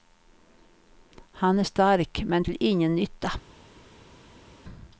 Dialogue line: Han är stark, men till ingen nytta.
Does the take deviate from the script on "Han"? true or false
false